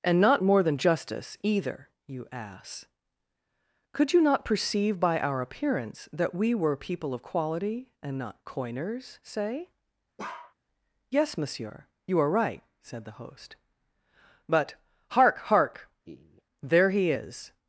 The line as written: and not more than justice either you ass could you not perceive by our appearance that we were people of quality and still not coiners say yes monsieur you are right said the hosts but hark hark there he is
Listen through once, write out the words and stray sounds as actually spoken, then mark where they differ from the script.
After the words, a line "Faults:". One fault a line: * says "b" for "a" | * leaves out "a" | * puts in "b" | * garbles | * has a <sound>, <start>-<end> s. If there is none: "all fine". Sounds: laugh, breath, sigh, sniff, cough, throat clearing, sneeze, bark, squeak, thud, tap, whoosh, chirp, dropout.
and not more than justice either you ass could you not perceive by our appearance that we were people of quality and not coiners say yes monsieur you are right said the host but hark hark there he is
Faults:
* leaves out "still"
* has a bark, 10.2-10.5 s
* says "host" for "hosts"
* has a laugh, 16.0-16.4 s